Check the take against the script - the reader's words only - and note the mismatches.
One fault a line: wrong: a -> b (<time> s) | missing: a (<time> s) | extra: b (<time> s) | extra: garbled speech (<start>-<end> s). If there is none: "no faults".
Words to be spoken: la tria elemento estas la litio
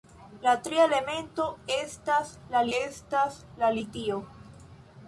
extra: estas la (2.8 s)